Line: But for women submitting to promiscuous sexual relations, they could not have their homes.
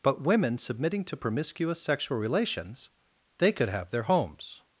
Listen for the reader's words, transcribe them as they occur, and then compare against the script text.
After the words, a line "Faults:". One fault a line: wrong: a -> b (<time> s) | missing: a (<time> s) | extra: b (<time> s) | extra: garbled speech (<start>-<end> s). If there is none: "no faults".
But women submitting to promiscuous sexual relations, they could have their homes.
Faults:
missing: for (0.2 s)
missing: not (3.7 s)